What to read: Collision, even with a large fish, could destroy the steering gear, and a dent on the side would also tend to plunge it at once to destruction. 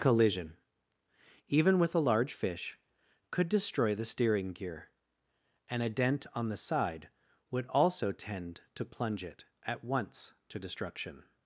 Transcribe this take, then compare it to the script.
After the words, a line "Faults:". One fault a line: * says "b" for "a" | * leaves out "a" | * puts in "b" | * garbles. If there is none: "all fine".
Collision, even with a large fish, could destroy the steering gear, and a dent on the side would also tend to plunge it at once to destruction.
Faults:
all fine